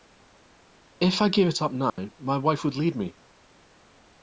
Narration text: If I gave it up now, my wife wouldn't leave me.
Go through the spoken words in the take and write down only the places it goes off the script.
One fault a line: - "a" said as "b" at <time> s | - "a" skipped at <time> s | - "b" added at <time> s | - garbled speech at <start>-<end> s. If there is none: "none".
- "wouldn't" said as "would" at 2.6 s